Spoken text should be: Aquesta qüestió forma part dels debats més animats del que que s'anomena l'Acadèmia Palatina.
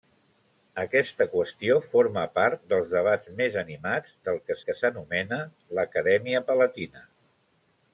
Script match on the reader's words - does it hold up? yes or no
yes